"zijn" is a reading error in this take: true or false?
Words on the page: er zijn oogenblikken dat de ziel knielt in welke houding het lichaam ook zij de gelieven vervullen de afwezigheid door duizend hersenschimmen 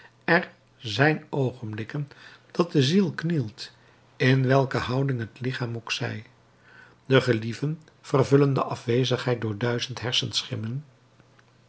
false